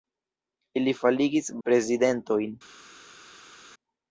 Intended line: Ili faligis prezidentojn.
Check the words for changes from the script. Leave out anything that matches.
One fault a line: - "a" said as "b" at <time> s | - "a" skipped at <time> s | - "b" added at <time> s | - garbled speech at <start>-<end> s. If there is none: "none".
none